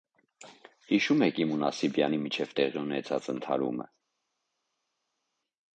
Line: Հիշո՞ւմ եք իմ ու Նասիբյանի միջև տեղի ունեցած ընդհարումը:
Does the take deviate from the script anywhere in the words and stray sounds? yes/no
no